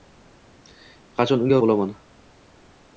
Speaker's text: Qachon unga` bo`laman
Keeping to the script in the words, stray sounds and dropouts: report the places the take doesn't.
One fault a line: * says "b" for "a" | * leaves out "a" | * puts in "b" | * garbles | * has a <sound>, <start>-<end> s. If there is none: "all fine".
all fine